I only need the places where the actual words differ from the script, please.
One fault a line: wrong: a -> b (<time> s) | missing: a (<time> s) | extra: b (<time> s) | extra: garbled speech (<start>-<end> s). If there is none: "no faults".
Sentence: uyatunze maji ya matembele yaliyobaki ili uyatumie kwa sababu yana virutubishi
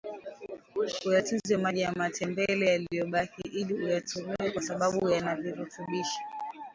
no faults